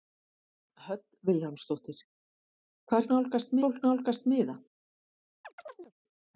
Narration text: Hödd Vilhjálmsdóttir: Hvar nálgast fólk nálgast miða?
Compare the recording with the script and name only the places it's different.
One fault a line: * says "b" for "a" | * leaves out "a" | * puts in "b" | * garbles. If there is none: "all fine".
all fine